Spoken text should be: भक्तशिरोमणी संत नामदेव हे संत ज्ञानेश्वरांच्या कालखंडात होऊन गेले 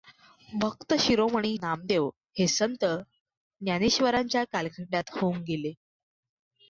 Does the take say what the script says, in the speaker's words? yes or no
no